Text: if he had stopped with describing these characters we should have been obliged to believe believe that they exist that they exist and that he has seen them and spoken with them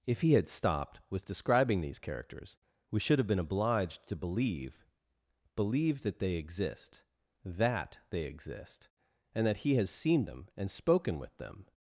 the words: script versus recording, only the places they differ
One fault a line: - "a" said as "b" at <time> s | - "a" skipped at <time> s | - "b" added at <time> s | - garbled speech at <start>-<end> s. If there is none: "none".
none